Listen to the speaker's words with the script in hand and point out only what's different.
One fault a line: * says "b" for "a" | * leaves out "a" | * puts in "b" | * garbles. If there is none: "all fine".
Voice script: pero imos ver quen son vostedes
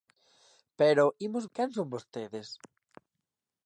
* leaves out "ver"